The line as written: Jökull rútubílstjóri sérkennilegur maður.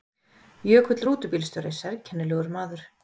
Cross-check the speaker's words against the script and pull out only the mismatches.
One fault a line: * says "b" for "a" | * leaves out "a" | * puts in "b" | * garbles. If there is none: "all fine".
all fine